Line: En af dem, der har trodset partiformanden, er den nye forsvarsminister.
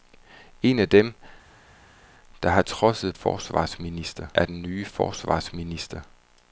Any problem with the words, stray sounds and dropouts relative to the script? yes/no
yes